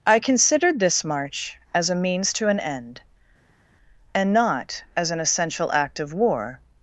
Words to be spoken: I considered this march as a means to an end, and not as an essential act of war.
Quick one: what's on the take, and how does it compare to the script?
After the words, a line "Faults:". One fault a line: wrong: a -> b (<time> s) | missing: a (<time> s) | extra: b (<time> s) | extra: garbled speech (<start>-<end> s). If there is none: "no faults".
I considered this march as a means to an end, and not as an essential act of war.
Faults:
no faults